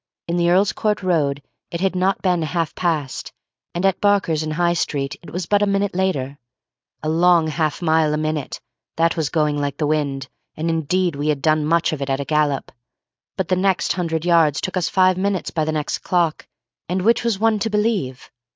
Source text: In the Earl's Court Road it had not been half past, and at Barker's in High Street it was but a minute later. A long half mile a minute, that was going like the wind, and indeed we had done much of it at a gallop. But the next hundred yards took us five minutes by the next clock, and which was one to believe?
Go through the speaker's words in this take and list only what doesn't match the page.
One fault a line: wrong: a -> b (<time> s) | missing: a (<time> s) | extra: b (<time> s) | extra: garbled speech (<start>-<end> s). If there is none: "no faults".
no faults